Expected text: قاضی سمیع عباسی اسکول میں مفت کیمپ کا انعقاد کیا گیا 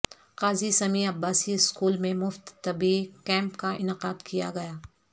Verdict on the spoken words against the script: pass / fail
fail